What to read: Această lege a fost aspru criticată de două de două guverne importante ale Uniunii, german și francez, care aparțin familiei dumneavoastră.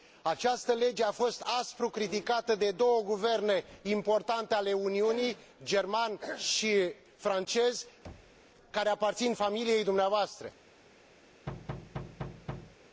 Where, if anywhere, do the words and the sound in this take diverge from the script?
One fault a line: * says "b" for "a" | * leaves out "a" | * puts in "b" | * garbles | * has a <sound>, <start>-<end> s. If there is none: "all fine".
* leaves out "de două"
* has a thud, 8.0-8.4 s
* has a thud, 11.5-12.8 s